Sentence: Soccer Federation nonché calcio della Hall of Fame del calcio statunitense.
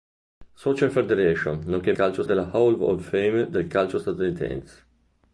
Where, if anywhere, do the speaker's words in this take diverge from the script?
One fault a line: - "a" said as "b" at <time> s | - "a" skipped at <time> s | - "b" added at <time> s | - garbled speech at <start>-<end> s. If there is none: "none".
none